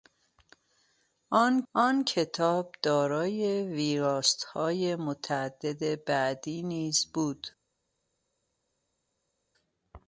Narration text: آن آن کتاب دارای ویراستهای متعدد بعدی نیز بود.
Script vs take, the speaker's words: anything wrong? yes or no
no